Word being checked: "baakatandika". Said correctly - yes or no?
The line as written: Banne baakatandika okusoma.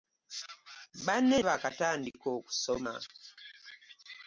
yes